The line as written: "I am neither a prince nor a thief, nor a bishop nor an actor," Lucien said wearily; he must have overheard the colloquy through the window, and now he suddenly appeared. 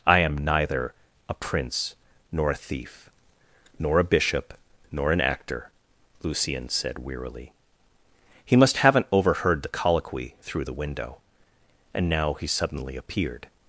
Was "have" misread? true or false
true